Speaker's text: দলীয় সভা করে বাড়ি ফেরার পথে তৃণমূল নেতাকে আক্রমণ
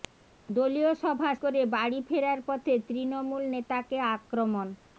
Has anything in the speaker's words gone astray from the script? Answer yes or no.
no